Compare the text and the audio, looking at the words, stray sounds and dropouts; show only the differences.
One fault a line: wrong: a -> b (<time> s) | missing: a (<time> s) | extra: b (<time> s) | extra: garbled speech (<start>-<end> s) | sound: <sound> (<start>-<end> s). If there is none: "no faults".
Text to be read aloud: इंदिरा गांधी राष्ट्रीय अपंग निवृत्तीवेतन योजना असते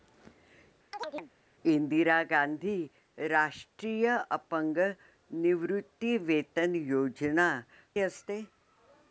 sound: chirp (0.9-1.3 s)